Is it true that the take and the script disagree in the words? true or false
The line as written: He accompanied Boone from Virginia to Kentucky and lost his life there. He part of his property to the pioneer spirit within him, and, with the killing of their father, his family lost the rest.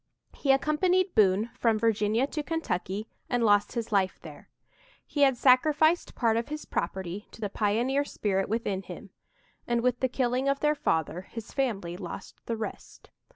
true